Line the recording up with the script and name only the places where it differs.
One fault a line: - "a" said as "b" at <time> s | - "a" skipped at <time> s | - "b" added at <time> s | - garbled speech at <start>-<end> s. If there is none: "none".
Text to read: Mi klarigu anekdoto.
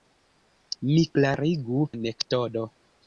none